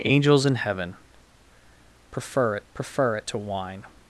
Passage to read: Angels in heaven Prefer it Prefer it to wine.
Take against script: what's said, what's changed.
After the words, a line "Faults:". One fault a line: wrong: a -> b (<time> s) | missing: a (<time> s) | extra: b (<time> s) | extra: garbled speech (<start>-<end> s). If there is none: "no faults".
Angels in heaven Prefer it Prefer it to wine.
Faults:
no faults